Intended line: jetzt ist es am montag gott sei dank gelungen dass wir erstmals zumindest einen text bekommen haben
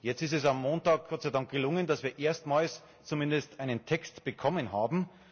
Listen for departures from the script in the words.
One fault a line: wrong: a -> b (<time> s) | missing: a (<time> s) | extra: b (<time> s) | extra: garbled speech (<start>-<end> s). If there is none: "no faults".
no faults